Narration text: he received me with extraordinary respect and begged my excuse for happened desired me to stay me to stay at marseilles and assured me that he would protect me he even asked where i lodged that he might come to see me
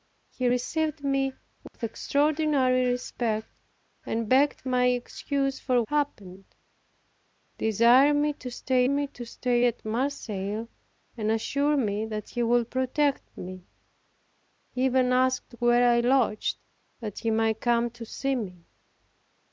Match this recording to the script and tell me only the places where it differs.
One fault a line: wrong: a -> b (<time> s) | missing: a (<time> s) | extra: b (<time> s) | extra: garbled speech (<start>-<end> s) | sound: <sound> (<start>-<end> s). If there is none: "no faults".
sound: dropout (1.7-1.7 s)